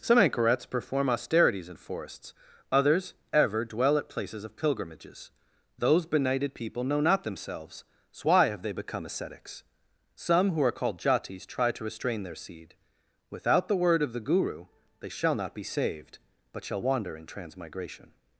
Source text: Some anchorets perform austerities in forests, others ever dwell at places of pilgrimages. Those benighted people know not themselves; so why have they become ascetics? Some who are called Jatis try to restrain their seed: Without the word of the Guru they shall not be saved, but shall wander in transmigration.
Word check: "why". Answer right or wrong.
right